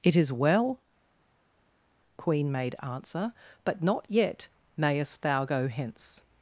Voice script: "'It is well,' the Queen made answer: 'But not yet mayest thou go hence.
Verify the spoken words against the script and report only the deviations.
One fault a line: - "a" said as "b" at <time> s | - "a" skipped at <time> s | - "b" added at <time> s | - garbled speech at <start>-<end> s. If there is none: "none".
- "the" skipped at 0.8 s